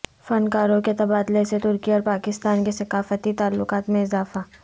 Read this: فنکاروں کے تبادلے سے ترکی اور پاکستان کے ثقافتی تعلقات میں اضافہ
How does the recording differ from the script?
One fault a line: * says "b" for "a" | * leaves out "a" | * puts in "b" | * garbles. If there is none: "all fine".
all fine